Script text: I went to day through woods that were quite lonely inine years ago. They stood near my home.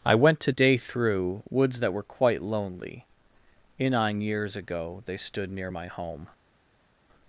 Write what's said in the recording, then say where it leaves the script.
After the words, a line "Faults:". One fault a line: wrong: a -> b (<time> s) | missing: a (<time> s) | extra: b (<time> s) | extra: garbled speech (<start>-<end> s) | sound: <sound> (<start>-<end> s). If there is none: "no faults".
I went to day through woods that were quite lonely inine years ago. They stood near my home.
Faults:
no faults